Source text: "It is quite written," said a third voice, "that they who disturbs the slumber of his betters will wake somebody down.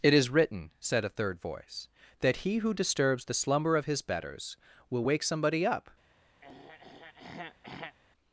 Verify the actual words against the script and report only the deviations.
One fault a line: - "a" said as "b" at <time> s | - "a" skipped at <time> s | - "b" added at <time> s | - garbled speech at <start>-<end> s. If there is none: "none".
- "quite" skipped at 0.3 s
- "they" said as "he" at 2.4 s
- "down" said as "up" at 5.7 s